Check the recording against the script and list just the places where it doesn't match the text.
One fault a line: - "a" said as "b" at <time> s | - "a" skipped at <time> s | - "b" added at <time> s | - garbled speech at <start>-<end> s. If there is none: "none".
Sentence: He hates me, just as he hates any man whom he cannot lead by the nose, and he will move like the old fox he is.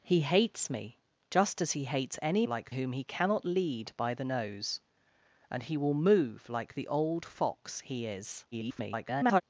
- "man" said as "like" at 2.4 s
- garbled speech at 8.5-9.4 s